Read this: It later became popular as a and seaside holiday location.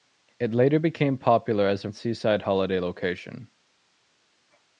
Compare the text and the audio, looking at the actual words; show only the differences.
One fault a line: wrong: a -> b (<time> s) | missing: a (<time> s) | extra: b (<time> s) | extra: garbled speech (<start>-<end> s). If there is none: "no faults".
no faults